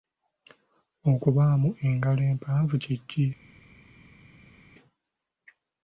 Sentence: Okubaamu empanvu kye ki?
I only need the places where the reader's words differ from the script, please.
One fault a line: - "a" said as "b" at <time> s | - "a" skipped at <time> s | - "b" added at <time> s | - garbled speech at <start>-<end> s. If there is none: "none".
- "engalo" added at 1.9 s